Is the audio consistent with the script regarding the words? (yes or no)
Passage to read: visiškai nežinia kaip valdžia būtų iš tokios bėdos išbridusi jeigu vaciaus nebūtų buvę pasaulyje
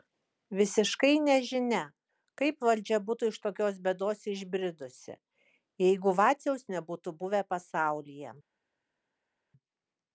yes